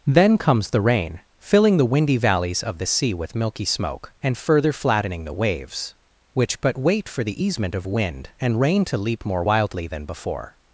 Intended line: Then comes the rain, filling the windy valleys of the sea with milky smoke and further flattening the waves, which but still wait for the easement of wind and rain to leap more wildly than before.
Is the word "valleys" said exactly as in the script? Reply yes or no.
yes